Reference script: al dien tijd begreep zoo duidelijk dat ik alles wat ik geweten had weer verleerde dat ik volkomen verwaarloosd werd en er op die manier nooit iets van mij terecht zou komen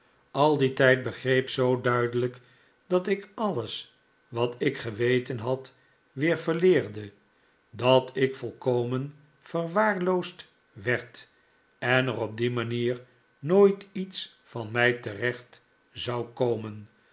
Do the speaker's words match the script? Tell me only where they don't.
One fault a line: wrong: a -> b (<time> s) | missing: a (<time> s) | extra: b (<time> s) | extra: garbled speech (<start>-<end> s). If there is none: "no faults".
no faults